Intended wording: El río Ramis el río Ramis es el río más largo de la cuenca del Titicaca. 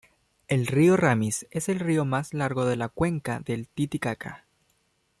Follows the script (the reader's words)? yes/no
no